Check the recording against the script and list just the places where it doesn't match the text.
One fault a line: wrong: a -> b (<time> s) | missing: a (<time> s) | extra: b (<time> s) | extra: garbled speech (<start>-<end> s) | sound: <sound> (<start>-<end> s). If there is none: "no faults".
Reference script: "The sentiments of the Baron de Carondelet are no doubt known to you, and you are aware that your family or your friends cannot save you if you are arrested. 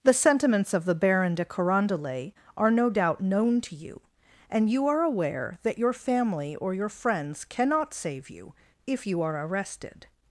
no faults